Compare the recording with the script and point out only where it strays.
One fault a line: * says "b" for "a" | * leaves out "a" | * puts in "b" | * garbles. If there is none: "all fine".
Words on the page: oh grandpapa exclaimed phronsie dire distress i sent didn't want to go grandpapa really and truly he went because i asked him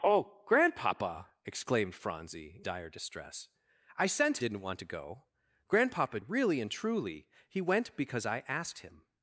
all fine